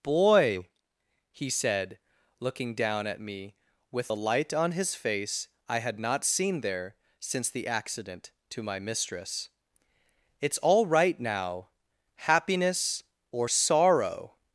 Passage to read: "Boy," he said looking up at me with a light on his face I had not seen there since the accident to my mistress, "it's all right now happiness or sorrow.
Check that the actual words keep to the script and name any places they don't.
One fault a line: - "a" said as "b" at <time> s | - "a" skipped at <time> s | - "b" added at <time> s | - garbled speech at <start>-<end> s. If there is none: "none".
- "up" said as "down" at 2.8 s